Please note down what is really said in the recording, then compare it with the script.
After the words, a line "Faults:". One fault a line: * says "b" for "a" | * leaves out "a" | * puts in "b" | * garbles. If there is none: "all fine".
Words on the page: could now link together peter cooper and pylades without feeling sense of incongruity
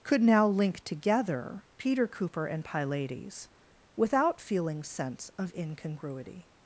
could now link together peter cooper and pylades without feeling sense of incongruity
Faults:
all fine